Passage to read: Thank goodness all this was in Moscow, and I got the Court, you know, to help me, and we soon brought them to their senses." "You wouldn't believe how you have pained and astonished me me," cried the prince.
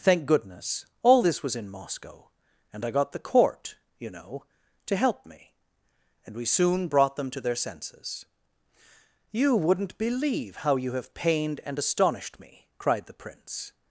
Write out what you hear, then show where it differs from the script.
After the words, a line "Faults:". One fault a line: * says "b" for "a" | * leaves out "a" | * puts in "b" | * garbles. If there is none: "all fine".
Thank goodness all this was in Moscow, and I got the Court, you know, to help me, and we soon brought them to their senses." "You wouldn't believe how you have pained and astonished me," cried the prince.
Faults:
* leaves out "me"